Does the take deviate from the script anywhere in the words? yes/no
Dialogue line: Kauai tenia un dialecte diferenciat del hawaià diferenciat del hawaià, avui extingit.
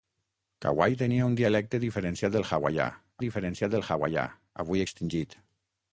no